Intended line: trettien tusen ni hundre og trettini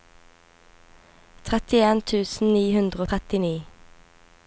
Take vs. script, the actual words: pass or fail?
pass